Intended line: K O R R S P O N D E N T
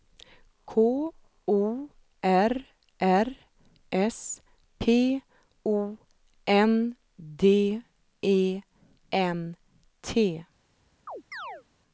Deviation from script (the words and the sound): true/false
true